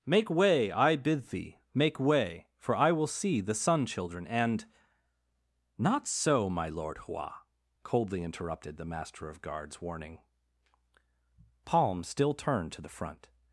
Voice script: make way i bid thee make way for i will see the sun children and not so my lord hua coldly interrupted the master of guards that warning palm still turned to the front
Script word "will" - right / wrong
right